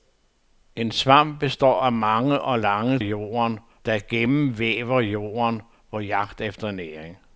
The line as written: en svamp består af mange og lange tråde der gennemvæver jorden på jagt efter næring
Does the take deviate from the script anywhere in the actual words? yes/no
yes